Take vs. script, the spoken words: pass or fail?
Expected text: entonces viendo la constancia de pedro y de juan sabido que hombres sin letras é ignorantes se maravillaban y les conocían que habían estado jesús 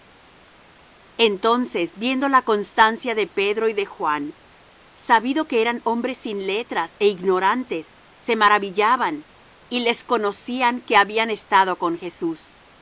fail